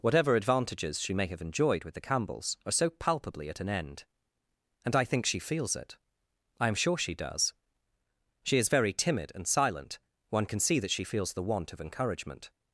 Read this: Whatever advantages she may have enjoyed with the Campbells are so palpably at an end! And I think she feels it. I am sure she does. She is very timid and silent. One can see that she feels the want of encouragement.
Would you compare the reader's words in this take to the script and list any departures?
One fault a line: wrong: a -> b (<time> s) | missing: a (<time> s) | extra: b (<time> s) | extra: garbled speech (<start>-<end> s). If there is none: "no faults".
no faults